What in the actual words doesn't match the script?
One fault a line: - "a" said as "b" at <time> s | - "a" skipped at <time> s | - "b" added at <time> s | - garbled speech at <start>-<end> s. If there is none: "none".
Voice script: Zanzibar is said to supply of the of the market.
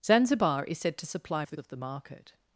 none